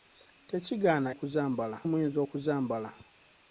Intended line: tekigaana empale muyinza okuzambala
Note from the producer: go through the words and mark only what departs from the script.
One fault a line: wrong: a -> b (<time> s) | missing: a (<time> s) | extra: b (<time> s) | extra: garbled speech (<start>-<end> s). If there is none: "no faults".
wrong: empale -> okuzambala (1.1 s)